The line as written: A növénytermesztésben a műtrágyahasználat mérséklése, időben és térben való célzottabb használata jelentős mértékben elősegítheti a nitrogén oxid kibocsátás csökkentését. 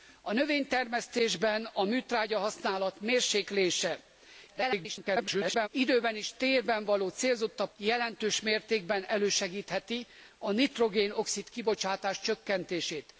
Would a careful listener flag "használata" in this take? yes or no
yes